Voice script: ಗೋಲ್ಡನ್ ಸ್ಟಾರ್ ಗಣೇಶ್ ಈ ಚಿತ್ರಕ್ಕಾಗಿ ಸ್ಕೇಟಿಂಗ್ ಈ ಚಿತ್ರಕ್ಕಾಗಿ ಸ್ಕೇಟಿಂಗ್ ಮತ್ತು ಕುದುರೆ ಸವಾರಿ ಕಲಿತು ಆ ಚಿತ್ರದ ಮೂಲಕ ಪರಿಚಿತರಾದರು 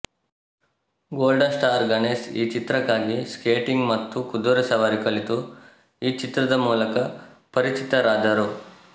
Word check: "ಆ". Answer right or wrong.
wrong